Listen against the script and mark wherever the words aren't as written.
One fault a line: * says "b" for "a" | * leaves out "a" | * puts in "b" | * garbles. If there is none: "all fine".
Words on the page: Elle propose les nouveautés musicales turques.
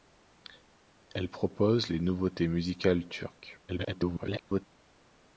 * garbles